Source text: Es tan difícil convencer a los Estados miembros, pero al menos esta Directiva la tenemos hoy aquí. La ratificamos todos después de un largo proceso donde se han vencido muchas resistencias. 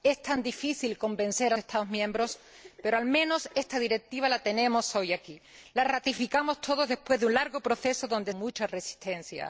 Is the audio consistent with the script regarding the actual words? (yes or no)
no